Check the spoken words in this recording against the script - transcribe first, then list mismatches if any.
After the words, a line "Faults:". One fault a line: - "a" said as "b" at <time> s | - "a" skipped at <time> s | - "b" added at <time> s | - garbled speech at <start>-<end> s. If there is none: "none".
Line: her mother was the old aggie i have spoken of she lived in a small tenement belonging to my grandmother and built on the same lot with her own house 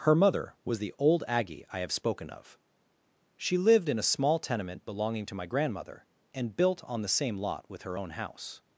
her mother was the old aggie i have spoken of she lived in a small tenement belonging to my grandmother and built on the same lot with her own house
Faults:
none